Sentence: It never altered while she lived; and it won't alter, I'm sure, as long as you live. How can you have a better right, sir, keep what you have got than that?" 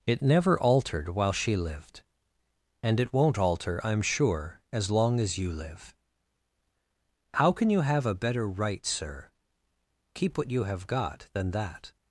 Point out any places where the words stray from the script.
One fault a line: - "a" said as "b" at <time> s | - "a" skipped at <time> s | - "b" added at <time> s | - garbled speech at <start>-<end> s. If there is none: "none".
none